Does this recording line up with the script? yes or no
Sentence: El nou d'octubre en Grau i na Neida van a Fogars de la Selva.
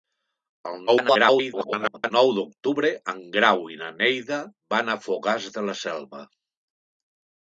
no